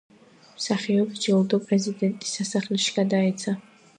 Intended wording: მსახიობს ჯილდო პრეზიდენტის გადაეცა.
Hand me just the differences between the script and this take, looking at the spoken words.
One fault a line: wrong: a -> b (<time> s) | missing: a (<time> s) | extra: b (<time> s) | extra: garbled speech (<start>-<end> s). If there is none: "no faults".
extra: სასახლეში (2.4 s)